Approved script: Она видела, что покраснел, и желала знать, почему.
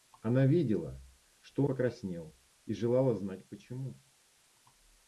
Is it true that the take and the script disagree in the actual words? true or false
false